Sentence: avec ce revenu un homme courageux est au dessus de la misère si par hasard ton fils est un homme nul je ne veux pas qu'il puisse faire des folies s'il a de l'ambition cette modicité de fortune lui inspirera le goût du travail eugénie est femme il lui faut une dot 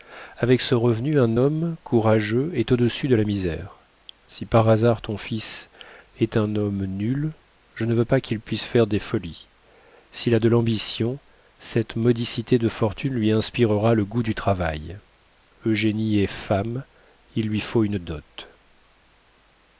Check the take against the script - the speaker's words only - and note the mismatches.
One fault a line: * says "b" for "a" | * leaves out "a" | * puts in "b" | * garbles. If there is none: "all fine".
all fine